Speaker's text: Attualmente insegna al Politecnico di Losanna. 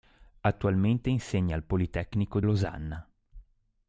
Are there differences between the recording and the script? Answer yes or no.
yes